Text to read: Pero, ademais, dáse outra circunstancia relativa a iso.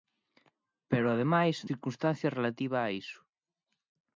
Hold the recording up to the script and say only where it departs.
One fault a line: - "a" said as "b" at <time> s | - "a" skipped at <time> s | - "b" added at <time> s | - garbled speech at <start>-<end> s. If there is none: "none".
- "dáse outra" skipped at 1.6 s